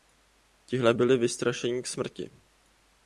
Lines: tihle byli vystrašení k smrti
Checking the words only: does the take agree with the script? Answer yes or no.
yes